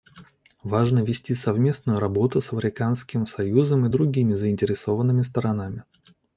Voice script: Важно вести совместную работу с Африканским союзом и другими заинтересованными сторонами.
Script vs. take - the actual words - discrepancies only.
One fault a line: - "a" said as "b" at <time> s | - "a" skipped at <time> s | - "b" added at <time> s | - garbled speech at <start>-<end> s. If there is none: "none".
none